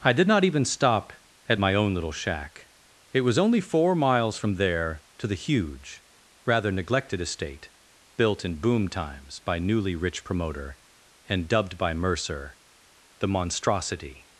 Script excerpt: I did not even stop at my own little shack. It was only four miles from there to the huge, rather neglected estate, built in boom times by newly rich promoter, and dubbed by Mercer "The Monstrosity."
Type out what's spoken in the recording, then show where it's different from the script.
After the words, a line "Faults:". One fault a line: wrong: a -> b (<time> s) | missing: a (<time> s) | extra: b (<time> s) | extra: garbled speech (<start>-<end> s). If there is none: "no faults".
I did not even stop at my own little shack. It was only four miles from there to the huge, rather neglected estate, built in boom times by newly rich promoter, and dubbed by Mercer "The Monstrosity."
Faults:
no faults